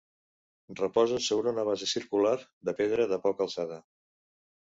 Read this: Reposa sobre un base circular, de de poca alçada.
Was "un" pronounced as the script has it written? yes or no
no